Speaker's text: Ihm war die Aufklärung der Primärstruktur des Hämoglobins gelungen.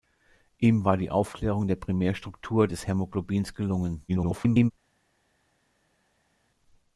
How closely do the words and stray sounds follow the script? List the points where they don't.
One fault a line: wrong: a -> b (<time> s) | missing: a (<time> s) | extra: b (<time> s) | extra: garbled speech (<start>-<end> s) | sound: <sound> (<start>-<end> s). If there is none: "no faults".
extra: garbled speech (4.1-4.7 s)